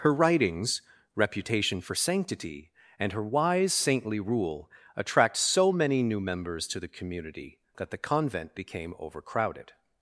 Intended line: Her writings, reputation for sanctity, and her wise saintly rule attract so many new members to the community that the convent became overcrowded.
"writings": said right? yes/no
yes